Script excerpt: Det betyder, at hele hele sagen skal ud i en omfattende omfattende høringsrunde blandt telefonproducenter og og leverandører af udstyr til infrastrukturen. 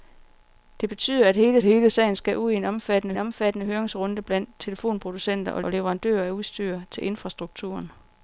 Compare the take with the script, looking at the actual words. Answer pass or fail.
pass